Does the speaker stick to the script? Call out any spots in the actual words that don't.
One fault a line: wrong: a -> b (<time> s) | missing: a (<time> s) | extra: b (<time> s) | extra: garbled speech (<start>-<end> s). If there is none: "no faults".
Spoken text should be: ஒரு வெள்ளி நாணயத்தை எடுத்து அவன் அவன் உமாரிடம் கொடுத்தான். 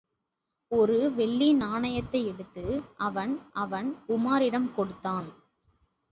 no faults